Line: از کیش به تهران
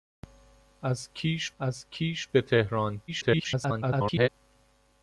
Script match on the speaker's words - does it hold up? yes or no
no